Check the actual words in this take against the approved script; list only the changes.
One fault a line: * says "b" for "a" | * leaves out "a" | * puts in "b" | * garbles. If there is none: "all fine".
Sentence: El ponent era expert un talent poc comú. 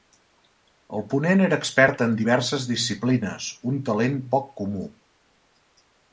* puts in "en diverses disciplines"